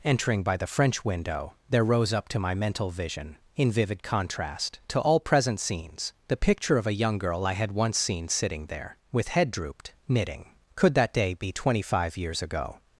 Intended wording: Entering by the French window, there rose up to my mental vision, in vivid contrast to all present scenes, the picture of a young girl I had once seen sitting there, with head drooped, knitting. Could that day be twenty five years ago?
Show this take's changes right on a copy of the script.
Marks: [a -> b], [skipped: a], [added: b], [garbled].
Entering by the French window, there rose up to my mental vision, in vivid contrast to all present scenes, the picture of a young girl I had once seen sitting there, with head drooped, knitting. Could that day be twenty five years ago?